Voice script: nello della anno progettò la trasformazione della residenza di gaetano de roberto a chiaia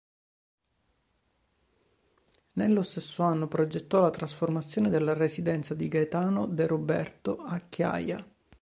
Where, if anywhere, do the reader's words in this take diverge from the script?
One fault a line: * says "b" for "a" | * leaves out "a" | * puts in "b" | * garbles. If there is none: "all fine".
* says "stesso" for "della"